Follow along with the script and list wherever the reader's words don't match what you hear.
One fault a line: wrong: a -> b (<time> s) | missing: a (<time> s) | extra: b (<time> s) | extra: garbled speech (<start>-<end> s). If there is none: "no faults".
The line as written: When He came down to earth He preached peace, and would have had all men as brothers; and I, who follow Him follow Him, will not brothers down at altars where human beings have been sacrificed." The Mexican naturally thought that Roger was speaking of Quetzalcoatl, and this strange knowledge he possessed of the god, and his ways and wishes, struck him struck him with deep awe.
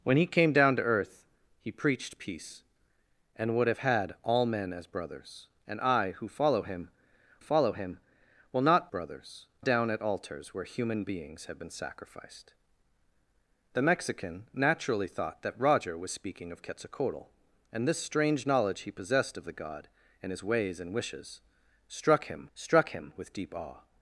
no faults